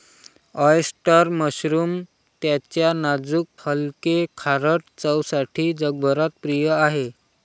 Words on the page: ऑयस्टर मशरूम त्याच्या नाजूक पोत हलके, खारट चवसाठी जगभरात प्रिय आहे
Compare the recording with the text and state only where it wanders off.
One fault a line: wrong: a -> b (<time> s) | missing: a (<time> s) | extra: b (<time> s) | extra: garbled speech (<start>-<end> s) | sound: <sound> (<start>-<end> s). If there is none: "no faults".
missing: पोत (3.5 s)